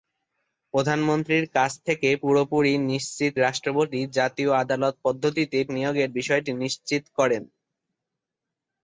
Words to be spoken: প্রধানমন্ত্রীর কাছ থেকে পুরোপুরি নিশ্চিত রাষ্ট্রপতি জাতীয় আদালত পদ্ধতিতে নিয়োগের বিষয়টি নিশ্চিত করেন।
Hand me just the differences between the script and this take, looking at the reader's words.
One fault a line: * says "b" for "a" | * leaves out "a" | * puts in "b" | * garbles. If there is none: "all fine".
all fine